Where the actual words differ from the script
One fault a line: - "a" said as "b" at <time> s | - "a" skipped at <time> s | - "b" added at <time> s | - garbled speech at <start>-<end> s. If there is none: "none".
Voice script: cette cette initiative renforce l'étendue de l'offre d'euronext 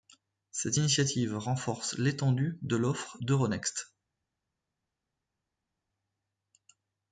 - "cette" skipped at 0.8 s